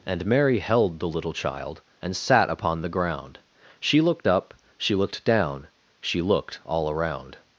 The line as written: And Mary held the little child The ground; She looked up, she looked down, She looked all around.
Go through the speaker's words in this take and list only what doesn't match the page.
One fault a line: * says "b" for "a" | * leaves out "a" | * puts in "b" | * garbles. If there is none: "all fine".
* puts in "And sat upon"